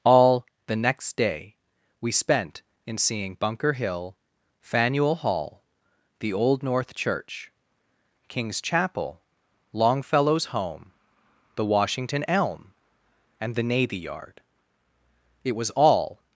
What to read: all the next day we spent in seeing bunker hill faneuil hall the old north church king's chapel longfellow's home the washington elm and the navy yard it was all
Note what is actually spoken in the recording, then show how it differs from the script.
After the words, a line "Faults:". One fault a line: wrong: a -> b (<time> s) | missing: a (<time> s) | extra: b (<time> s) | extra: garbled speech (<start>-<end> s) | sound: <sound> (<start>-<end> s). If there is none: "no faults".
all the next day we spent in seeing bunker hill faneuil hall the old north church king's chapel longfellow's home the washington elm and the navy yard it was all
Faults:
no faults